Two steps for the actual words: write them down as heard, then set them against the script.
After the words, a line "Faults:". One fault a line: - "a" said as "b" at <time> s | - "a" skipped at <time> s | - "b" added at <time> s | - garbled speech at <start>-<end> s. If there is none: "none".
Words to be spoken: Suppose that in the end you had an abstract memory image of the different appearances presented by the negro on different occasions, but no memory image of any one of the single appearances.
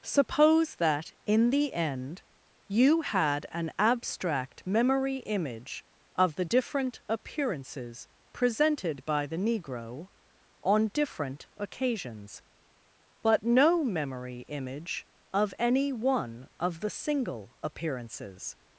Suppose that in the end you had an abstract memory image of the different appearances presented by the negro on different occasions, but no memory image of any one of the single appearances.
Faults:
none